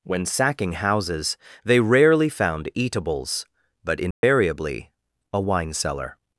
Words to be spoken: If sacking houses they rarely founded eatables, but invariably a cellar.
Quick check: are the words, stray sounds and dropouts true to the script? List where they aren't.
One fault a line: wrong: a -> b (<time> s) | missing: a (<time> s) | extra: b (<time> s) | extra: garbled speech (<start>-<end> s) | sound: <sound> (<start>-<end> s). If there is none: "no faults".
wrong: If -> When (0.0 s)
wrong: founded -> found (2.3 s)
sound: dropout (4.1-4.2 s)
extra: wine (5.4 s)